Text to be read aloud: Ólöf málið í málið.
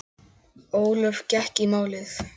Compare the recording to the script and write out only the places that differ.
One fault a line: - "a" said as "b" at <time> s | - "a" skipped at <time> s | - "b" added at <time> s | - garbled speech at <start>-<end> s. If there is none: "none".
- "málið" said as "gekk" at 1.4 s